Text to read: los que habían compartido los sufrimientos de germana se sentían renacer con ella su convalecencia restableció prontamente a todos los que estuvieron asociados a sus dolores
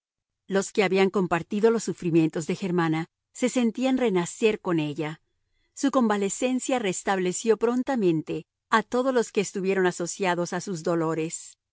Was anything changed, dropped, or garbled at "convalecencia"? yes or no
no